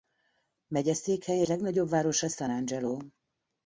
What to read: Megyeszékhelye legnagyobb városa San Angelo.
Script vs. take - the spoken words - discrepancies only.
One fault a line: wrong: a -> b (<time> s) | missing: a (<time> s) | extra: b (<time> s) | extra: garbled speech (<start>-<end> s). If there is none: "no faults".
no faults